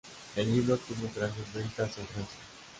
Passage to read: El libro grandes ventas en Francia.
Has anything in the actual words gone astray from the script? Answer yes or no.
yes